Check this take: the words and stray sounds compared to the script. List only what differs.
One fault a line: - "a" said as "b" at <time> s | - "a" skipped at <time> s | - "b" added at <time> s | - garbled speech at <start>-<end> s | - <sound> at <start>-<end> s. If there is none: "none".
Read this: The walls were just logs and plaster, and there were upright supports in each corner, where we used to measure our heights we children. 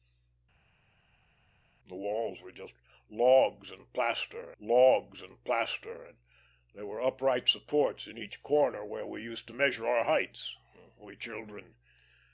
- "logs and plaster" added at 4.6 s